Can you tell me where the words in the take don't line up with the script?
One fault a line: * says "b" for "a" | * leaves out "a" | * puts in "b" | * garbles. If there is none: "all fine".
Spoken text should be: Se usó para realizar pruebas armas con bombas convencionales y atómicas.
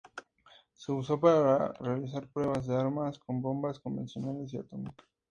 * puts in "de"